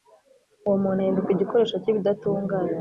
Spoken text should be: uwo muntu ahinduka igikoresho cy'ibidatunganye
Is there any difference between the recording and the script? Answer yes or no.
no